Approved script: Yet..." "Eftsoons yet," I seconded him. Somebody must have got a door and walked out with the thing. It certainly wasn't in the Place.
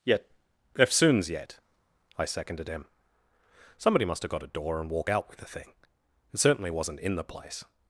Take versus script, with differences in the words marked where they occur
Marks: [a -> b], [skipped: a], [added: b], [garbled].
Yet..." "Eftsoons yet," I seconded him. Somebody must have got a door and [walked -> walk] out with the thing. It certainly wasn't in the Place.